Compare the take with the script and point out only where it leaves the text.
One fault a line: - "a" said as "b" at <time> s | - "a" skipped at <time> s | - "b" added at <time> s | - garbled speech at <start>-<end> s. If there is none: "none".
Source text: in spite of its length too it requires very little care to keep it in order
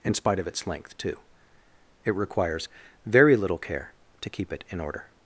none